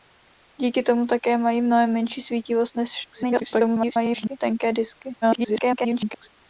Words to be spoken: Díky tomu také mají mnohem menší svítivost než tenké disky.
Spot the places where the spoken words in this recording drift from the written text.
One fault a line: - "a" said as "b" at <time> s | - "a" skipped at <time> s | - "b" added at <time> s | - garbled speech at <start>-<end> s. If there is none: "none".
- garbled speech at 3.1-4.4 s
- garbled speech at 5.2-6.3 s